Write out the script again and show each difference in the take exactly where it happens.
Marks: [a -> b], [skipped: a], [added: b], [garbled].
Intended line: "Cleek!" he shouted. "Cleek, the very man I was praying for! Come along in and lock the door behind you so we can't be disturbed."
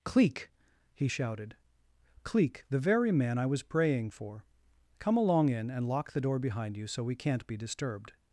"Cleek!" he shouted. "Cleek, the very man I was praying for! Come along in and lock the door behind you so we can't be disturbed."